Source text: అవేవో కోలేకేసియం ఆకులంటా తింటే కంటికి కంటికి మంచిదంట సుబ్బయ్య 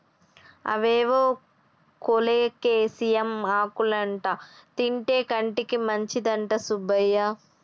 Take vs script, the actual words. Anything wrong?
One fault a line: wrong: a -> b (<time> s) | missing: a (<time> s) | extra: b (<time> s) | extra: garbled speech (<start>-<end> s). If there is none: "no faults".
missing: కంటికి (5.8 s)